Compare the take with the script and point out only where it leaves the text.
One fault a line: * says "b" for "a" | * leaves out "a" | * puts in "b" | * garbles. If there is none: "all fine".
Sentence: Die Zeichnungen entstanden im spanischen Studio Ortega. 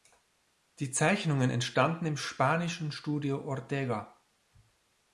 all fine